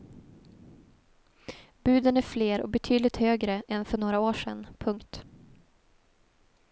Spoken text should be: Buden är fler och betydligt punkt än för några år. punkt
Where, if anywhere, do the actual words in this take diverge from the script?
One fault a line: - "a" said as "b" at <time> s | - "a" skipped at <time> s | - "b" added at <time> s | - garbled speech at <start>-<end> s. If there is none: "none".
- "punkt" said as "högre" at 3.2 s
- "sedan" added at 4.3 s